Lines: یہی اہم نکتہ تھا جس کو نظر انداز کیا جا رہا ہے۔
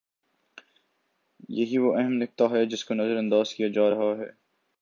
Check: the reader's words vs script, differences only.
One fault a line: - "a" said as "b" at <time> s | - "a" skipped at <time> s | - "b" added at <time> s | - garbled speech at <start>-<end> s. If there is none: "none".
- "وہ" added at 1.8 s
- "تھا" said as "ہے" at 2.5 s